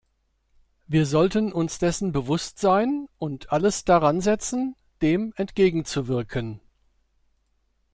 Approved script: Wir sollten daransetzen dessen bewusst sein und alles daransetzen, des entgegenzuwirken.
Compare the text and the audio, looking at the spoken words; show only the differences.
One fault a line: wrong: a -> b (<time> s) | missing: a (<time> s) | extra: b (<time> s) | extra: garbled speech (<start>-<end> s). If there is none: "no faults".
wrong: daransetzen -> uns (1.5 s)
wrong: des -> dem (5.0 s)